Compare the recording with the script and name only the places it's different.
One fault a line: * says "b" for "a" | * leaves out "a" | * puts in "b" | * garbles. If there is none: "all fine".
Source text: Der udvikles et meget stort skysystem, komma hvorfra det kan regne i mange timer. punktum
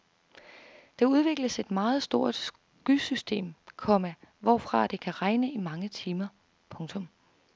all fine